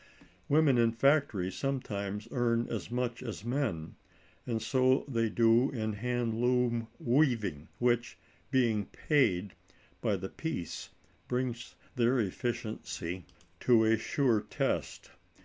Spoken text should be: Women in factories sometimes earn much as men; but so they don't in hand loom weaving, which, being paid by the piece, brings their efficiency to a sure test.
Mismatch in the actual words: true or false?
true